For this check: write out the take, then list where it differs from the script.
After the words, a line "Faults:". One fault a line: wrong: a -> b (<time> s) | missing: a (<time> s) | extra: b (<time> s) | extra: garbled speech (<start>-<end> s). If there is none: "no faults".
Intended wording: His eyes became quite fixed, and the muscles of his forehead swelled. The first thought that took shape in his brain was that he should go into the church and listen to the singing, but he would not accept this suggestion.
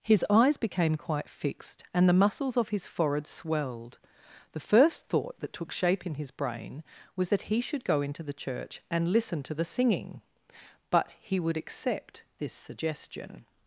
His eyes became quite fixed, and the muscles of his forehead swelled. The first thought that took shape in his brain was that he should go into the church and listen to the singing, but he would accept this suggestion.
Faults:
missing: not (11.6 s)